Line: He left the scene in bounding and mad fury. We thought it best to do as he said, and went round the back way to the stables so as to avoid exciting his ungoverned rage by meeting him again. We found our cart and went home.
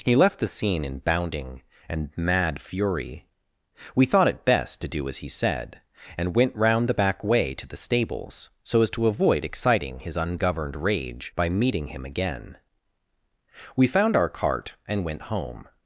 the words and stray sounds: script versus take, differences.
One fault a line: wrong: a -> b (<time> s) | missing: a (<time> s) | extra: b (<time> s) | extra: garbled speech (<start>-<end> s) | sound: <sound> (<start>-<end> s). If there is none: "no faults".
no faults